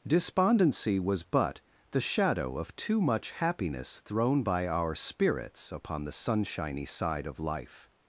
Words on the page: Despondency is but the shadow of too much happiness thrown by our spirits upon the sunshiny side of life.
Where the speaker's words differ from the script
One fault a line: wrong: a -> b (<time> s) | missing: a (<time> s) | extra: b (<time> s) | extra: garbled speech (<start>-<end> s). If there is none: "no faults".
wrong: is -> was (1.0 s)